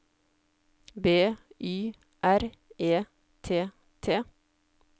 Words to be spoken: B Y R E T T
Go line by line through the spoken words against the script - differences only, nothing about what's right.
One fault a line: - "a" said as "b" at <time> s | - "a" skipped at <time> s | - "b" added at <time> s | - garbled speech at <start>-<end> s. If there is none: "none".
none